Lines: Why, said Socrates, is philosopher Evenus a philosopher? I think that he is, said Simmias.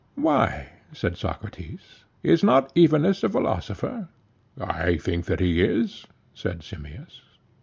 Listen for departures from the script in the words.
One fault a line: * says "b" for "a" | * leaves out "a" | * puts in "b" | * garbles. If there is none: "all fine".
* says "not" for "philosopher"